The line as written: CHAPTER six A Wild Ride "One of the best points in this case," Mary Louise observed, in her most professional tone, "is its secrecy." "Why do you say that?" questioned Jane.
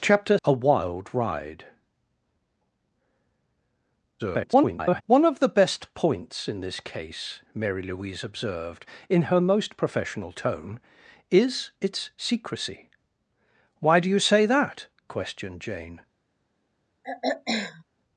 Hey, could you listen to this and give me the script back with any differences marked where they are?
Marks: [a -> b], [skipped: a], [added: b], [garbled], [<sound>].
CHAPTER [skipped: six] A Wild Ride [garbled] "One of the best points in this case," Mary Louise observed, in her most professional tone, "is its secrecy." "Why do you say that?" questioned Jane. [throat clearing]